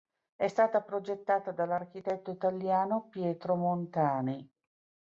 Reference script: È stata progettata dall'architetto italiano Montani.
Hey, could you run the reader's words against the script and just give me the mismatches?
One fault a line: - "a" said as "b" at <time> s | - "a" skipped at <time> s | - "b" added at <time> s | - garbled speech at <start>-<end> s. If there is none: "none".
- "Pietro" added at 3.1 s